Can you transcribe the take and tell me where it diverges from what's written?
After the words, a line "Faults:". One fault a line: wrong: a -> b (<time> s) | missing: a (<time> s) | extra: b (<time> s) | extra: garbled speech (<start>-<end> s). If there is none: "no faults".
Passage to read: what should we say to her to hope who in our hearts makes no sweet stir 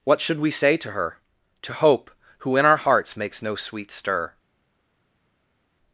what should we say to her to hope who in our hearts makes no sweet stir
Faults:
no faults